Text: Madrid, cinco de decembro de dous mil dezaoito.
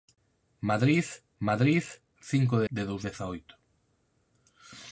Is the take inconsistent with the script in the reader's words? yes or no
yes